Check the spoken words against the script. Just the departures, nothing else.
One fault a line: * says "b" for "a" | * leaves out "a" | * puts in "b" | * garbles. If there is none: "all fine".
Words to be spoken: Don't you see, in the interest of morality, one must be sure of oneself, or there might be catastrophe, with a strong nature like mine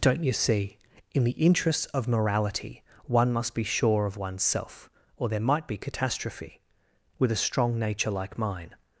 * says "interests" for "interest"